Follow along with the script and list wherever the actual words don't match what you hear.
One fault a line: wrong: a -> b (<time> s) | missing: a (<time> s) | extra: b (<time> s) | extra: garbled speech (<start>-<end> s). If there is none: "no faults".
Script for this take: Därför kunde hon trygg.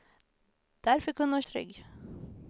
no faults